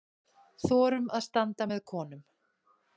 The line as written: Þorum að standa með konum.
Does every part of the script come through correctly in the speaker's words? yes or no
yes